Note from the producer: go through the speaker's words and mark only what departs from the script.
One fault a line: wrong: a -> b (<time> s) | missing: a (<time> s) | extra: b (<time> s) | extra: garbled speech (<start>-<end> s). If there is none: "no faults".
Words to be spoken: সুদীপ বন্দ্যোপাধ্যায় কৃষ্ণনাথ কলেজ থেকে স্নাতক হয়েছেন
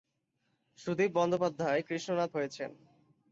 missing: কলেজ থেকে স্নাতক (2.3 s)